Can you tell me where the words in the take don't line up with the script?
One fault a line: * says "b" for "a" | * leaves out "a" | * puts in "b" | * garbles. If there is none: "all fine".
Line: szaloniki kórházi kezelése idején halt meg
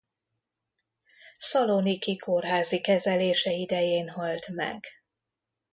all fine